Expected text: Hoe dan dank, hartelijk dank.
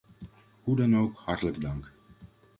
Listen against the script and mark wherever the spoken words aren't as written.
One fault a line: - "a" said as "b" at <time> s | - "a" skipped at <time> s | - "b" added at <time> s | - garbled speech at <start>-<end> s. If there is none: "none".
- "dank" said as "ook" at 1.0 s